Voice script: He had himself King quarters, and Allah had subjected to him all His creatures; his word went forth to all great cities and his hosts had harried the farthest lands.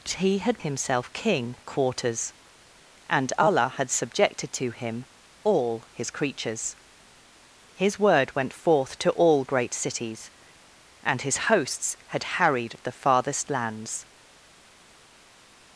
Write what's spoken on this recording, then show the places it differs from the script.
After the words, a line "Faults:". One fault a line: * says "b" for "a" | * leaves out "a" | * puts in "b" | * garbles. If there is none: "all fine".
He had himself King quarters, and Allah had subjected to him all His creatures; his word went forth to all great cities and his hosts had harried the farthest lands.
Faults:
all fine